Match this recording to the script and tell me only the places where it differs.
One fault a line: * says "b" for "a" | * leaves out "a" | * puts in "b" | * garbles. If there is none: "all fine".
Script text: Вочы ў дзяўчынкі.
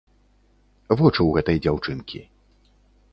* puts in "гэтай"